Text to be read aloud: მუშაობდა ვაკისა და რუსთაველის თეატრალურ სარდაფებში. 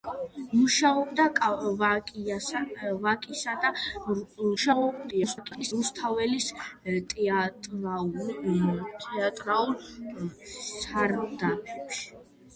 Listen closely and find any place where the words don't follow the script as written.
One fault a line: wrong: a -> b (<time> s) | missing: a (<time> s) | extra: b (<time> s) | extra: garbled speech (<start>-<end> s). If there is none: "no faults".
extra: garbled speech (4.6-5.7 s)